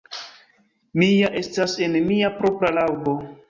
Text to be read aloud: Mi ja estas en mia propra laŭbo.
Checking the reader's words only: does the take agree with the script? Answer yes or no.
yes